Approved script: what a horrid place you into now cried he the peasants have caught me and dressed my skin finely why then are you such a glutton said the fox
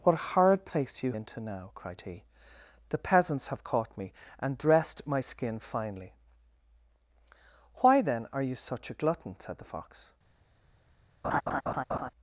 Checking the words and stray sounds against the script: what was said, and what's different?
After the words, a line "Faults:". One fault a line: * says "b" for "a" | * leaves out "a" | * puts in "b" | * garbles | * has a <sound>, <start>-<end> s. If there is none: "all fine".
what a horrid place you into now cried he the peasants have caught me and dressed my skin finely why then are you such a glutton said the fox
Faults:
* has a laugh, 11.2-12.1 s